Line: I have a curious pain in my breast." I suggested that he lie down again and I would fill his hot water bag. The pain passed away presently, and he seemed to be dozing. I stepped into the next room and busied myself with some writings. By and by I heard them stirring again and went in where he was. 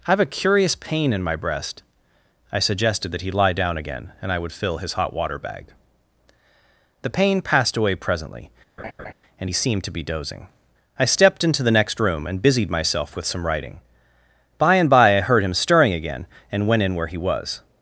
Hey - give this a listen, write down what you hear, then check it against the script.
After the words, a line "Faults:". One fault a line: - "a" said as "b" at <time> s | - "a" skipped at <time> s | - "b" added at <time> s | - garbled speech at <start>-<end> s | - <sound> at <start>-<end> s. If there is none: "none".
I have a curious pain in my breast." I suggested that he lie down again and I would fill his hot water bag. The pain passed away presently, and he seemed to be dozing. I stepped into the next room and busied myself with some writing. By and by I heard him stirring again and went in where he was.
Faults:
- laugh at 8.8-9.1 s
- "writings" said as "writing" at 13.5 s
- "them" said as "him" at 15.4 s